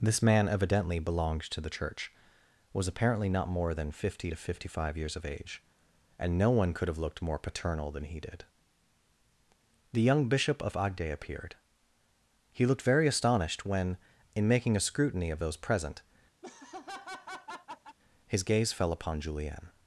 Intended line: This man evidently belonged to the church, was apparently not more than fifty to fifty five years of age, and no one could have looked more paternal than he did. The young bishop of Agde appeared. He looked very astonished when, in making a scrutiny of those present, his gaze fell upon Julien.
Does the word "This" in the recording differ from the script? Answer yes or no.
no